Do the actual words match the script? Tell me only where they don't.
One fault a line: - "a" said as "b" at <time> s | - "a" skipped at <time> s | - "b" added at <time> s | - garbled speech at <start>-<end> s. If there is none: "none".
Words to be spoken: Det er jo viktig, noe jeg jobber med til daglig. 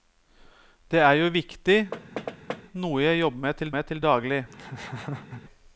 - "med til" added at 3.8 s